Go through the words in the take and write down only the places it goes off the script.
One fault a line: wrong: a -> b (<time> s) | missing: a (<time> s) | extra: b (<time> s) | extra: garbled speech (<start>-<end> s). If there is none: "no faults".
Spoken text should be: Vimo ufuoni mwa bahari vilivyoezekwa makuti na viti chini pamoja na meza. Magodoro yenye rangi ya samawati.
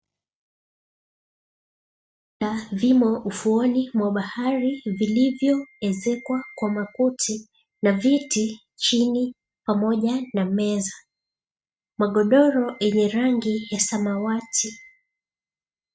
extra: kwa (6.5 s)